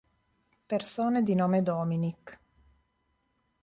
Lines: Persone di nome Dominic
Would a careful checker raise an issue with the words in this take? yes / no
no